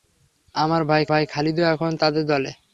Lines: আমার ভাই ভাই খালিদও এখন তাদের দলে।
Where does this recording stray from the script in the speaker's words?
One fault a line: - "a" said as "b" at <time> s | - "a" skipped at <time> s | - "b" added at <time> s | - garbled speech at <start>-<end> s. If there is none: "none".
none